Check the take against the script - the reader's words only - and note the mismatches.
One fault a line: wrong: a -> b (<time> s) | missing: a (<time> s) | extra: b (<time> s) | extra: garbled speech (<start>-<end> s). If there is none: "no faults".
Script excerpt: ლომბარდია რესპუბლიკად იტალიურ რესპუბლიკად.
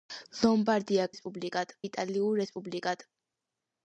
no faults